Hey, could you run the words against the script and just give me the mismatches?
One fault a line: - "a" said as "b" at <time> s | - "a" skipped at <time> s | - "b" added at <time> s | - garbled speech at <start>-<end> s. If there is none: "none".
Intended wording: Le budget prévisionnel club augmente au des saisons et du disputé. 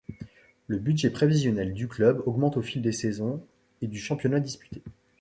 - "du" added at 1.8 s
- "fil" added at 2.6 s
- "championnat" added at 4.0 s